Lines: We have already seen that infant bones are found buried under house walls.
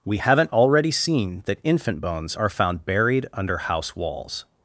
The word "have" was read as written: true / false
false